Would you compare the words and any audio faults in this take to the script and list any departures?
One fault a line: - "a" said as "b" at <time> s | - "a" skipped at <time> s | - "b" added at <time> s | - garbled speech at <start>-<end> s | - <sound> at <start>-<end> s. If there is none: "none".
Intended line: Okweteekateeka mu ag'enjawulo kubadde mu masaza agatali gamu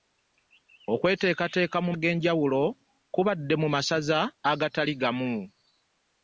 none